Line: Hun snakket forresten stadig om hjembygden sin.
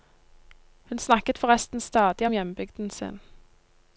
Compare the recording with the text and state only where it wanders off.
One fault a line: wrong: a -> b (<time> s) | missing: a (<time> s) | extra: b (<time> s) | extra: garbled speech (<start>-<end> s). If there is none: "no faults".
no faults